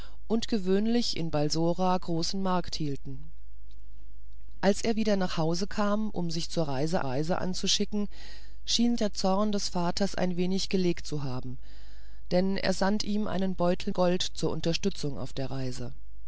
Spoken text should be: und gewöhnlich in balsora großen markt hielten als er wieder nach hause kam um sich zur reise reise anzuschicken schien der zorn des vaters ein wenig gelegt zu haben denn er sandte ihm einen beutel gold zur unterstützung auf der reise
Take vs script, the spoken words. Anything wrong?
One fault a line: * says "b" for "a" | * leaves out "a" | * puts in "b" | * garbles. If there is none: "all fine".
all fine